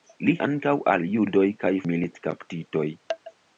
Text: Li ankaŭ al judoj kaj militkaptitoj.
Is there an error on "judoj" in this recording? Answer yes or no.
no